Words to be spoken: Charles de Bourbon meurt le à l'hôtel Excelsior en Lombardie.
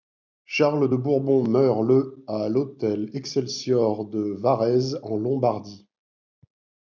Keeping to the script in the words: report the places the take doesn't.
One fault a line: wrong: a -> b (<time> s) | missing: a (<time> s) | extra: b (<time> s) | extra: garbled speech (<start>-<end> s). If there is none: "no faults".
extra: de Varèse (4.0 s)